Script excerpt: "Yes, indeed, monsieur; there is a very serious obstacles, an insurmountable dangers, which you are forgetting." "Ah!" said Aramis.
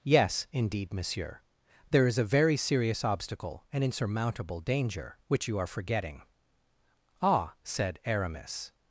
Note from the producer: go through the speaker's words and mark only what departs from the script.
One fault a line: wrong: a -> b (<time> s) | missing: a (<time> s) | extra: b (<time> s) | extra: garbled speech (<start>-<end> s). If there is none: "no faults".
wrong: obstacles -> obstacle (3.0 s)
wrong: dangers -> danger (4.6 s)